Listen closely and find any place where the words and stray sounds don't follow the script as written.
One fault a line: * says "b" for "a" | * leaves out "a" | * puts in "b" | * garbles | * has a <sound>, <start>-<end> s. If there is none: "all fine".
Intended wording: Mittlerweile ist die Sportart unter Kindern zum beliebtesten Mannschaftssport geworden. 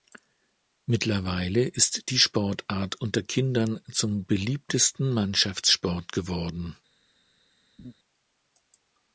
* has a laugh, 7.8-7.9 s